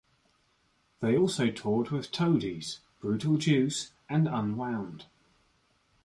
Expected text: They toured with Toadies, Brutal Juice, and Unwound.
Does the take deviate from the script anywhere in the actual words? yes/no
yes